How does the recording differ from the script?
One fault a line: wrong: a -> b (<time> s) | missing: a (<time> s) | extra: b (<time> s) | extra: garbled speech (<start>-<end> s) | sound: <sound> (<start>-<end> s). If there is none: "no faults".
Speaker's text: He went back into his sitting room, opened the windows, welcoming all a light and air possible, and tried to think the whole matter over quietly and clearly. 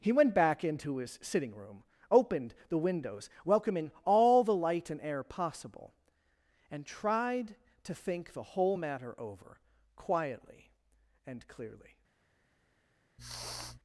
wrong: a -> the (4.4 s)
sound: sniff (13.2-13.8 s)